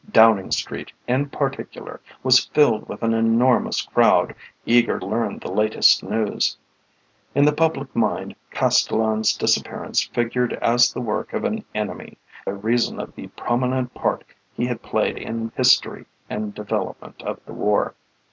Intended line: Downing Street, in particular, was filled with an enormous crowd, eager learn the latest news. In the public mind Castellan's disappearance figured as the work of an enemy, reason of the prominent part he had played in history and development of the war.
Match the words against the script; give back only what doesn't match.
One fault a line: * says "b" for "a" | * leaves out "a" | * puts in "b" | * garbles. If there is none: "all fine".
all fine